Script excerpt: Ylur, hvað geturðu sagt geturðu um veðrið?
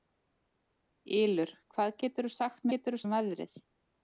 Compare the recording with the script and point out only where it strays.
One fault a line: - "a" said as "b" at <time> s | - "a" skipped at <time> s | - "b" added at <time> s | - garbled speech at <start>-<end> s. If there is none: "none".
none